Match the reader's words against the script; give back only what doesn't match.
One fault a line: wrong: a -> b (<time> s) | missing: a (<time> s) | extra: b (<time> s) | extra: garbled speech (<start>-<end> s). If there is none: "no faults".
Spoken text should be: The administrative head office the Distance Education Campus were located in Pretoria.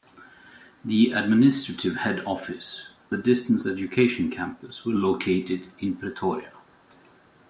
no faults